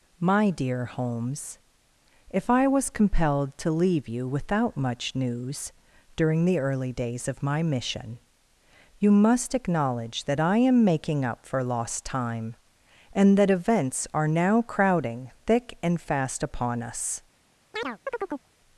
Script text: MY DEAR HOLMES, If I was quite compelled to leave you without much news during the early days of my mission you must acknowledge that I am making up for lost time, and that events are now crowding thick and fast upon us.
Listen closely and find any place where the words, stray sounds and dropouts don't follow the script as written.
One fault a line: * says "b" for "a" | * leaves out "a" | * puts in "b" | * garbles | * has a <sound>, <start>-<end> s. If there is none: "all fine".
* leaves out "quite"
* has a chirp, 17.7-18.5 s